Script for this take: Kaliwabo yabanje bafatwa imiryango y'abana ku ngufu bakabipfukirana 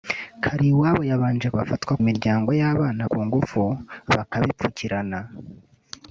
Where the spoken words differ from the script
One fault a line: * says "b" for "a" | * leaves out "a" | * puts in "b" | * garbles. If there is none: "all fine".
all fine